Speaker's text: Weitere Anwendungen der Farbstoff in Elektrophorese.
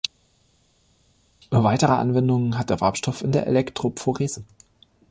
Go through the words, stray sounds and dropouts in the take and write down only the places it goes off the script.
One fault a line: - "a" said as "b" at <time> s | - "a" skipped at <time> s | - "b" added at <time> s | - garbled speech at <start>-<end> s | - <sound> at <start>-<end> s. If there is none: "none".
- "hat" added at 2.6 s
- "der" added at 3.3 s